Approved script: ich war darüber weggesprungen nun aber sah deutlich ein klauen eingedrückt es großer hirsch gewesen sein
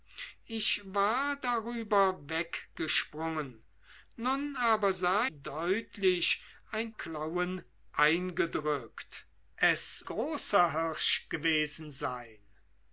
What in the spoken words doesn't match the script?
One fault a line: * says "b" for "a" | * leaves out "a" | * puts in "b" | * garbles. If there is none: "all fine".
all fine